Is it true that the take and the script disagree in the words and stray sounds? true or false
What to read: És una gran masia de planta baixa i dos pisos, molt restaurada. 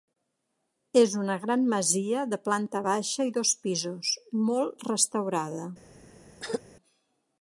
true